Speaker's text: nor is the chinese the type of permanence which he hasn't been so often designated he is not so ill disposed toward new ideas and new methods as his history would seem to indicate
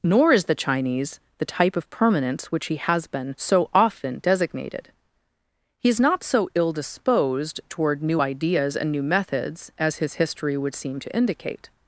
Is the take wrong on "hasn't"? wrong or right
wrong